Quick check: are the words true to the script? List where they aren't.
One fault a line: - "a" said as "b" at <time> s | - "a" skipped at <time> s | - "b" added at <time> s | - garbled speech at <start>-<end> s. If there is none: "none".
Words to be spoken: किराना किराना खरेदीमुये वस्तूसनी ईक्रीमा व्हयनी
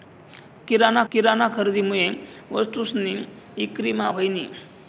none